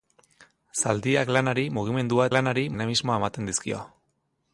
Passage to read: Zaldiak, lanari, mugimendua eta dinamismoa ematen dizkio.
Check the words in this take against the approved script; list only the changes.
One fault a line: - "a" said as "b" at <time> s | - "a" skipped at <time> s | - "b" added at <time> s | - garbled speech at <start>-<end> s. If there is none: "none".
- "eta" said as "lanari" at 2.3 s